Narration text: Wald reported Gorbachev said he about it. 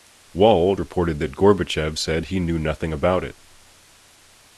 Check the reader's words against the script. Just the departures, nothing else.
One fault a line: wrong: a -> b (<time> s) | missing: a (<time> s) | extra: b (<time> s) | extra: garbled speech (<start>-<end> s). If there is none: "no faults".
extra: that (1.2 s)
extra: knew nothing (2.4 s)